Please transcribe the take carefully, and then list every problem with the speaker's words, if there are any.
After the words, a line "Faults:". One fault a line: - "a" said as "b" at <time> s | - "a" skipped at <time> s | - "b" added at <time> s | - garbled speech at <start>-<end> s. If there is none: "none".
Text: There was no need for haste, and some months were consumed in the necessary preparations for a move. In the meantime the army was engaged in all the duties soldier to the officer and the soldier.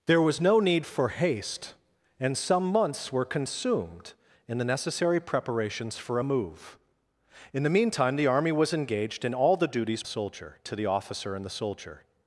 There was no need for haste, and some months were consumed in the necessary preparations for a move. In the meantime the army was engaged in all the duties soldier to the officer and the soldier.
Faults:
none